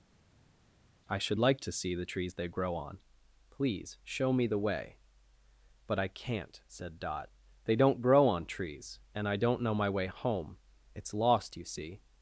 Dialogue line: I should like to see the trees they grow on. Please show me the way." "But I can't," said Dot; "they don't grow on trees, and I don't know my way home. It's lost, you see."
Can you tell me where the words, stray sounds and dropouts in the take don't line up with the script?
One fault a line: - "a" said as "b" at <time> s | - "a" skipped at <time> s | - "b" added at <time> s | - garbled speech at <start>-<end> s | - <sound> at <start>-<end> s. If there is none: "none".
none